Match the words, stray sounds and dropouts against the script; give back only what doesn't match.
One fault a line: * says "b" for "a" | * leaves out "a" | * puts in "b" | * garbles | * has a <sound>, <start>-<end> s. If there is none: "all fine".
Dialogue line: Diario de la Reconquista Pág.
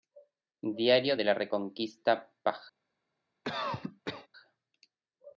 * has a cough, 3.4-4.3 s